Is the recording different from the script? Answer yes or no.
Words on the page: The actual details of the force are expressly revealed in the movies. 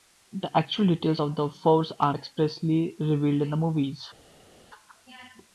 no